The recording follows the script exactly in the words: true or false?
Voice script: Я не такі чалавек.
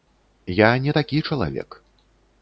true